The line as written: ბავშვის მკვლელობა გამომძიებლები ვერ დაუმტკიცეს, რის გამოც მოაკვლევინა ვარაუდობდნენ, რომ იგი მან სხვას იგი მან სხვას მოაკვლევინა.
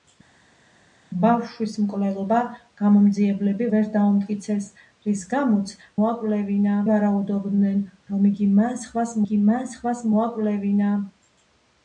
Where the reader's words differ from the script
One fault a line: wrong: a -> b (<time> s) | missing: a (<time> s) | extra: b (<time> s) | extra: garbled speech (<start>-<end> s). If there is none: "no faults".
no faults